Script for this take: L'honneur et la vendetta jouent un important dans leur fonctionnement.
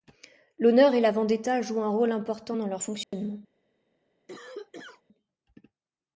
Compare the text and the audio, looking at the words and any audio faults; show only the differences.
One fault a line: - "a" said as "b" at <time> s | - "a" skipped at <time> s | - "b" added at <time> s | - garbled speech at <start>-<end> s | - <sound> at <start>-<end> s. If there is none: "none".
- "rôle" added at 1.9 s
- dropout at 3.0-3.1 s
- cough at 4.3-5.0 s